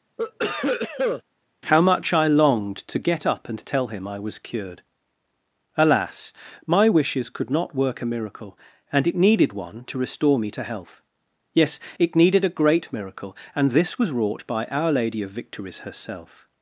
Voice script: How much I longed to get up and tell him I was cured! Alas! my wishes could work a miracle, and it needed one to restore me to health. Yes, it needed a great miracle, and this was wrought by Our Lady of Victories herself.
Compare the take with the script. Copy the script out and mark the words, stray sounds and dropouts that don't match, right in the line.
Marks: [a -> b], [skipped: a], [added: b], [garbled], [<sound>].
[cough] How much I longed to get up and tell him I was cured! Alas! my wishes could [added: not] work a miracle, and it needed one to restore me to health. Yes, it needed a great miracle, and this was wrought by Our Lady of Victories herself.